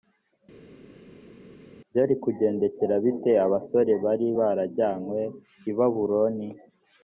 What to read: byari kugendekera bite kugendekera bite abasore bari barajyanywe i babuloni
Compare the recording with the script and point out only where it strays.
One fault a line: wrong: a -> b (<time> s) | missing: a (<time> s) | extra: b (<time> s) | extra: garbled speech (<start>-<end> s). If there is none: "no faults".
missing: kugendekera bite (3.3 s)